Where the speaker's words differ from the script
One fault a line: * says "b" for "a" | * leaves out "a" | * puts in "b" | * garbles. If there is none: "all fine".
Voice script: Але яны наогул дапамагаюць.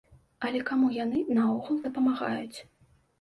* puts in "каму"